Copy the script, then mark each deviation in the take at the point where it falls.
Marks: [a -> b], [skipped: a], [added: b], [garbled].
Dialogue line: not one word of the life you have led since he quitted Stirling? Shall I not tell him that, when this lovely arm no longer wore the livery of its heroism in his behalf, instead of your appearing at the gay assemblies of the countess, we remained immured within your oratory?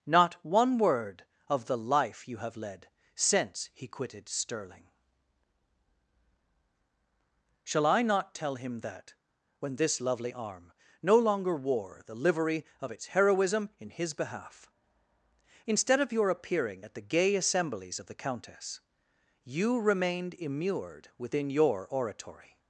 not one word of the life you have led since he quitted Stirling? Shall I not tell him that, when this lovely arm no longer wore the livery of its heroism in his behalf, instead of your appearing at the gay assemblies of the countess, [we -> you] remained immured within your oratory?